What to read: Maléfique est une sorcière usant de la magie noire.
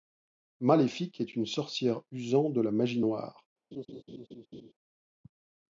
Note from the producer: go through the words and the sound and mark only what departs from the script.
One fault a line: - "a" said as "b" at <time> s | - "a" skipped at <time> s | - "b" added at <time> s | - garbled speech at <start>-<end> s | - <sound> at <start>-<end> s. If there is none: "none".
- laugh at 3.7-4.7 s